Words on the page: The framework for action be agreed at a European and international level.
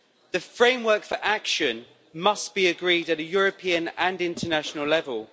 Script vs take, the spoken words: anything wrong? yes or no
yes